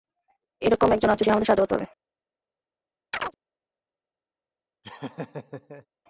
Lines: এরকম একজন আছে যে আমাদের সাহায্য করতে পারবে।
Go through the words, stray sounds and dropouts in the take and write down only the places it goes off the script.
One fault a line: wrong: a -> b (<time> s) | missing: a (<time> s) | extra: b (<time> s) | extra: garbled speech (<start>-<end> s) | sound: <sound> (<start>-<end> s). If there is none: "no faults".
sound: chirp (3.1-3.4 s)
sound: laugh (4.8-5.9 s)